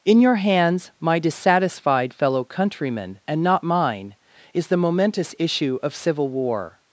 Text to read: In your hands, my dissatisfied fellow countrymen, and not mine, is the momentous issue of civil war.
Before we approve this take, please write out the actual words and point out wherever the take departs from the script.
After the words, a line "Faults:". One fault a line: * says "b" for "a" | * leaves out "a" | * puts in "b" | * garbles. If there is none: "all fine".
In your hands, my dissatisfied fellow countrymen, and not mine, is the momentous issue of civil war.
Faults:
all fine